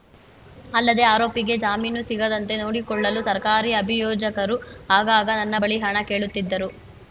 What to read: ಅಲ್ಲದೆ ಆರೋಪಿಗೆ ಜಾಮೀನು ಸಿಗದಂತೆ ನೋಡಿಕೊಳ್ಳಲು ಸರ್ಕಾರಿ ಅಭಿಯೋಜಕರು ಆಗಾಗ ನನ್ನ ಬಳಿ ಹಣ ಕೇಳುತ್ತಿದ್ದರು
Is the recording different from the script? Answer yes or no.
no